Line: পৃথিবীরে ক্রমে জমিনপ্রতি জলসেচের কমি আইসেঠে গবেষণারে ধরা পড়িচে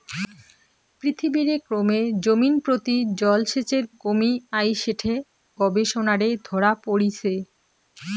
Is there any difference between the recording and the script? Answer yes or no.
no